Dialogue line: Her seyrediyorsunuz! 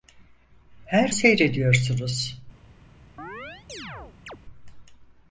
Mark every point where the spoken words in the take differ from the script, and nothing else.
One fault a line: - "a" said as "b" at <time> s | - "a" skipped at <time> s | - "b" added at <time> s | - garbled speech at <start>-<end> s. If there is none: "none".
none